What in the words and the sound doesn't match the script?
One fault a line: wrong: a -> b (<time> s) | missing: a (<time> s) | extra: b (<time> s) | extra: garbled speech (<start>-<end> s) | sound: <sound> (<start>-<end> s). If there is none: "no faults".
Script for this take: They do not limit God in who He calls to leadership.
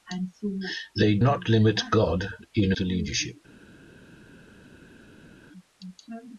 missing: do (1.2 s)
missing: who He calls (2.7 s)